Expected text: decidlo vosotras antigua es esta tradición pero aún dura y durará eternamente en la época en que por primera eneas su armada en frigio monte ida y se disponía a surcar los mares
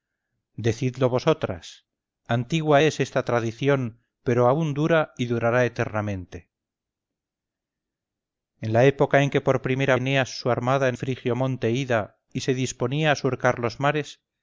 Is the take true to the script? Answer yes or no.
yes